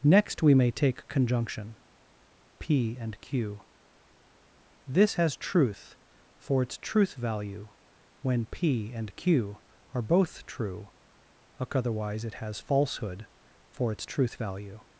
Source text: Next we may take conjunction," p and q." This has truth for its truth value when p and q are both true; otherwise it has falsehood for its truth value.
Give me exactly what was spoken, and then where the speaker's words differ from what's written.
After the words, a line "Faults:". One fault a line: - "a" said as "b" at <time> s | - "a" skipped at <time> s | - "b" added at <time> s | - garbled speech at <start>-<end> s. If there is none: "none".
Next we may take conjunction," p and q." This has truth for its truth value when p and q are both true; otherwise it has falsehood for its truth value.
Faults:
none